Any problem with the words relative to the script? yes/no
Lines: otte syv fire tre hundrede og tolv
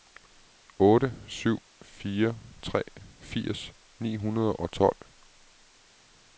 yes